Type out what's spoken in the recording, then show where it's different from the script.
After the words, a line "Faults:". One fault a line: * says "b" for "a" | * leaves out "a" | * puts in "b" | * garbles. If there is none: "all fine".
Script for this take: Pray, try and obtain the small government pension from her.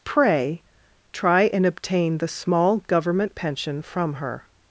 Pray, try and obtain the small government pension from her.
Faults:
all fine